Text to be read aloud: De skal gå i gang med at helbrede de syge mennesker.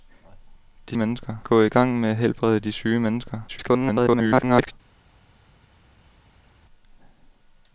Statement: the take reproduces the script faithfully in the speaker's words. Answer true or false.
false